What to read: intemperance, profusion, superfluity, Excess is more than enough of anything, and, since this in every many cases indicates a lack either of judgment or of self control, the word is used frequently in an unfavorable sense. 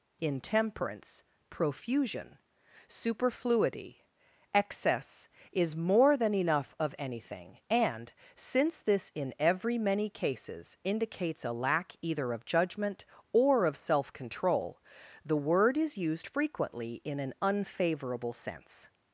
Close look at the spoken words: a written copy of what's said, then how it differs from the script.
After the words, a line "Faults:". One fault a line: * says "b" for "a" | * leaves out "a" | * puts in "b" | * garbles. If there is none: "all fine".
intemperance, profusion, superfluity, Excess is more than enough of anything, and, since this in every many cases indicates a lack either of judgment or of self control, the word is used frequently in an unfavorable sense.
Faults:
all fine